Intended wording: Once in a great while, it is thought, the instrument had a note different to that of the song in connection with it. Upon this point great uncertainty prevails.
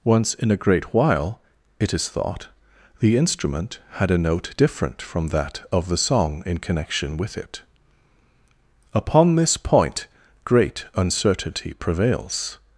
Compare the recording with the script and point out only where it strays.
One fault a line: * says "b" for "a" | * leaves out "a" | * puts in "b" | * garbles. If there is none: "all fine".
* says "from" for "to"